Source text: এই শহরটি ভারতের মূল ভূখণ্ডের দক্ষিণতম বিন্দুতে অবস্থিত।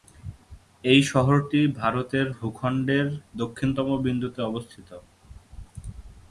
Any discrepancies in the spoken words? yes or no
yes